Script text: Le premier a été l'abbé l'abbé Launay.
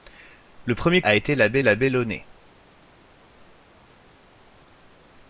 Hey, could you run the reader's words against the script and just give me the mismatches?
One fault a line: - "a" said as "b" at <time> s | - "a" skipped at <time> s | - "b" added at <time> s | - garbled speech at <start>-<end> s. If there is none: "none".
none